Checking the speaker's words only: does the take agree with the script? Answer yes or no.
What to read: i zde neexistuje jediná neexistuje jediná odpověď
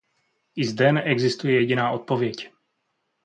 no